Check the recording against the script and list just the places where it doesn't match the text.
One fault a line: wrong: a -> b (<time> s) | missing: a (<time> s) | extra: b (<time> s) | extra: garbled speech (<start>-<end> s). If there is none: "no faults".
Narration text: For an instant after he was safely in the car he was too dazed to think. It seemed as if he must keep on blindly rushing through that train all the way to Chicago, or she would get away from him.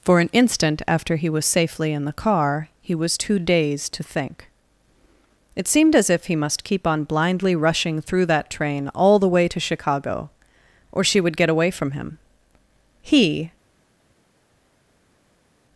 extra: He (13.0 s)